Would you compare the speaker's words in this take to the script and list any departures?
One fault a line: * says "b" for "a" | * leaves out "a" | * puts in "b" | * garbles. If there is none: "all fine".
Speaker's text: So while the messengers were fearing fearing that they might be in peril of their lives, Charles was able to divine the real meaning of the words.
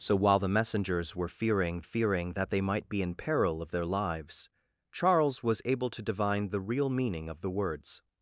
all fine